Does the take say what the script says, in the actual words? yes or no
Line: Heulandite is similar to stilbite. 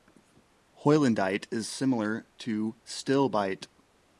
yes